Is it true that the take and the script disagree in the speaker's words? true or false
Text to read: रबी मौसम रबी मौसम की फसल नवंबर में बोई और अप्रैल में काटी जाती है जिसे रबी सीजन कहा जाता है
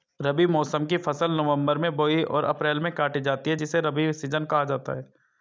true